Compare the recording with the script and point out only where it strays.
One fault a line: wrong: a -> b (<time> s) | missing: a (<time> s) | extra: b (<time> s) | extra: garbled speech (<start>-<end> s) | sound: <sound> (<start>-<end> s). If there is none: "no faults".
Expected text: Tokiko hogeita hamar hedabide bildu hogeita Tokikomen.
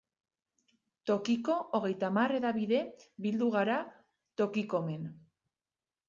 wrong: hogeita -> gara (3.5 s)